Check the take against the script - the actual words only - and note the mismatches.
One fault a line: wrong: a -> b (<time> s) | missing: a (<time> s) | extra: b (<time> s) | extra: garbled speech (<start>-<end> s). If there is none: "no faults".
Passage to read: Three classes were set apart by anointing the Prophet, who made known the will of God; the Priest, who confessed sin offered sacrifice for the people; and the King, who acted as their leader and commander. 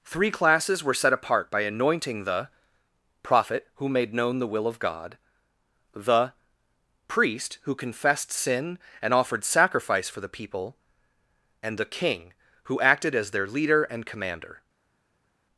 extra: and (9.0 s)